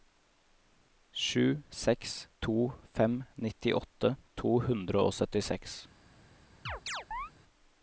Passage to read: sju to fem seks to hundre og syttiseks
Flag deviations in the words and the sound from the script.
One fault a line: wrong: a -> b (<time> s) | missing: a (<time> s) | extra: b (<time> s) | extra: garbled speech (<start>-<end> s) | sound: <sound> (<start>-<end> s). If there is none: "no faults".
extra: seks (1.8 s)
wrong: seks -> nittiåtte (3.5 s)
sound: chirp (6.7-7.3 s)